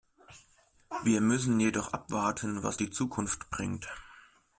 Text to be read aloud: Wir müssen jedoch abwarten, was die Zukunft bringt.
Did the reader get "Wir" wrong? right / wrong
right